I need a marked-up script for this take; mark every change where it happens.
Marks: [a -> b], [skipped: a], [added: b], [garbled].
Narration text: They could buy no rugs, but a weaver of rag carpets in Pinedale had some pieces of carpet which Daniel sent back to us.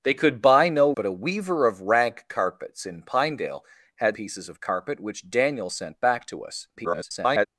They could buy no [skipped: rugs,] but a weaver of rag carpets in Pinedale had [skipped: some] pieces of carpet which Daniel sent back to us. [garbled]